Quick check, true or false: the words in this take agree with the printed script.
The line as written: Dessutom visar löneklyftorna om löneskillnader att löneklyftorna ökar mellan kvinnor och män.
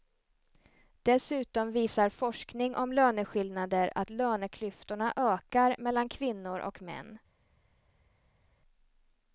false